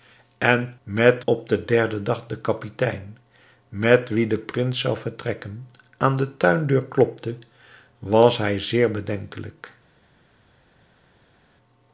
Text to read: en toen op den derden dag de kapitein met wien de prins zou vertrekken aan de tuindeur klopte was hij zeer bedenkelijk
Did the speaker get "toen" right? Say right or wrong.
wrong